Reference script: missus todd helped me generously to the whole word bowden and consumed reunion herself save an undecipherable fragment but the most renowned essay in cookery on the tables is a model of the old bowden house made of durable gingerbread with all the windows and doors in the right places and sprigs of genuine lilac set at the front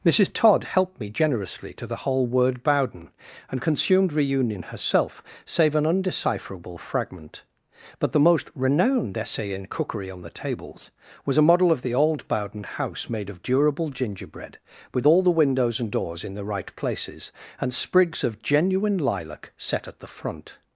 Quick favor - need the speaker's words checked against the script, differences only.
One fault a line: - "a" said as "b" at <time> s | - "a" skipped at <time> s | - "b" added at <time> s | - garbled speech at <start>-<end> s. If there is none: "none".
- "is" said as "was" at 11.2 s